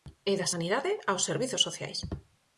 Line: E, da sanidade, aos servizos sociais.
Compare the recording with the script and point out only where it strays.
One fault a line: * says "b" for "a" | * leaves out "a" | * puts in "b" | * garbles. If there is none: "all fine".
all fine